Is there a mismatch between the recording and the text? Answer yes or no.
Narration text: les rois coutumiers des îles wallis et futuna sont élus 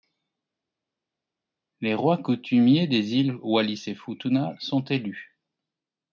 no